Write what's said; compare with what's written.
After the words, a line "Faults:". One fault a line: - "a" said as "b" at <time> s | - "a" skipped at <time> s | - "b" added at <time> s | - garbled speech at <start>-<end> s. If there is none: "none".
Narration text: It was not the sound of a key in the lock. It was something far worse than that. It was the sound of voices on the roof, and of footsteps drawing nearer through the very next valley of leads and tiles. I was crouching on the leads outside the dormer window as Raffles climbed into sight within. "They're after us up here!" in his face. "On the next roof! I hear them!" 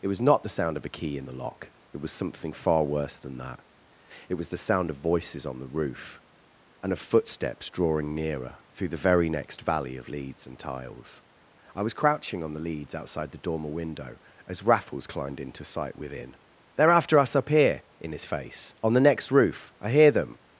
It was not the sound of a key in the lock. It was something far worse than that. It was the sound of voices on the roof, and of footsteps drawing nearer through the very next valley of leads and tiles. I was crouching on the leads outside the dormer window as Raffles climbed into sight within. "They're after us up here!" in his face. "On the next roof! I hear them!"
Faults:
none